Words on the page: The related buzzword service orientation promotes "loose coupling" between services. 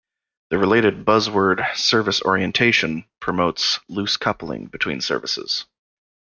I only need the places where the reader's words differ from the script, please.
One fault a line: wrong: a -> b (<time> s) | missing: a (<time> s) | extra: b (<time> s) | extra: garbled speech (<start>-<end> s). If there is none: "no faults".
no faults